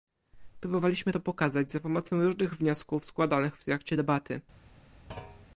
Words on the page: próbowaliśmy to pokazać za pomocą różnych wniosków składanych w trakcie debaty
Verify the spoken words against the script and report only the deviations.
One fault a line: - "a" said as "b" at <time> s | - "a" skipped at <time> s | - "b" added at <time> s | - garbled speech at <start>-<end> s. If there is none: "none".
none